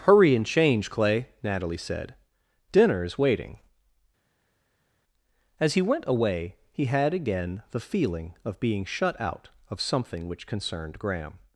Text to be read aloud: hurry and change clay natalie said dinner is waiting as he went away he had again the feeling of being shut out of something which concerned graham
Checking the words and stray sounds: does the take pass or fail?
pass